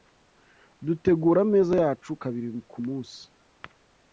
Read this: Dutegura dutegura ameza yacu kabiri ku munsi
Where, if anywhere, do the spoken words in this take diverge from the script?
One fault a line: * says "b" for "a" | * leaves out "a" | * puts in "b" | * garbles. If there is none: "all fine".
* leaves out "dutegura"